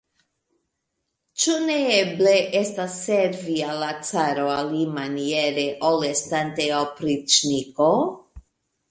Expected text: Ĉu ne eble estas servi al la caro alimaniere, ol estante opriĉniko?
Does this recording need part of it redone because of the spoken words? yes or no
no